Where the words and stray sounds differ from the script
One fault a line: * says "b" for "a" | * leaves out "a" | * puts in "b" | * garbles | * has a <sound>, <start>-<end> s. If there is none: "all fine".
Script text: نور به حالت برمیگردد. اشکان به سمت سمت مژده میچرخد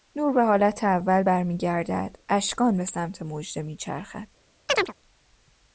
* puts in "اول"
* leaves out "سمت"
* has a chirp, 4.7-4.9 s